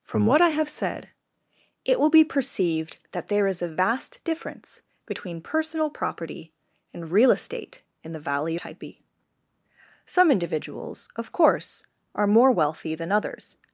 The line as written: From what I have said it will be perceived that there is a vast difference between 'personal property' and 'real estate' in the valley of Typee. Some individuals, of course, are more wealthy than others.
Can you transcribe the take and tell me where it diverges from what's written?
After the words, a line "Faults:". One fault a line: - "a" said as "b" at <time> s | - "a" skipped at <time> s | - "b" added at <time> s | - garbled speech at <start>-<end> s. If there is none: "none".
From what I have said it will be perceived that there is a vast difference between 'personal property' and 'real estate' in the valley Typee. Some individuals, of course, are more wealthy than others.
Faults:
- "of" skipped at 8.6 s